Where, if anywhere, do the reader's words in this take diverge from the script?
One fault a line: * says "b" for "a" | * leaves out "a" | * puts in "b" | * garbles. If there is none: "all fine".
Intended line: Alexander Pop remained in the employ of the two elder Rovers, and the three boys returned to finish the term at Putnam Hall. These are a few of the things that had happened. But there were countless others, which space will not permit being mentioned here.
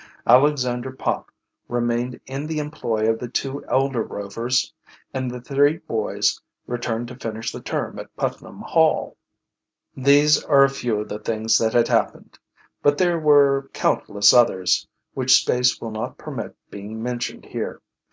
all fine